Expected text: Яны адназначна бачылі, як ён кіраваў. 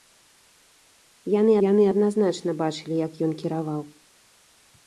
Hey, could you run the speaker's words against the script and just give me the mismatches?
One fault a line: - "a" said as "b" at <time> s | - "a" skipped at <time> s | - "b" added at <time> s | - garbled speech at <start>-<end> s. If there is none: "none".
- "яны" added at 1.7 s